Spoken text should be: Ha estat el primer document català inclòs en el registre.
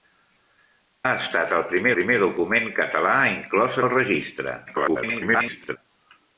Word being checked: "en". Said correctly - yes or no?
no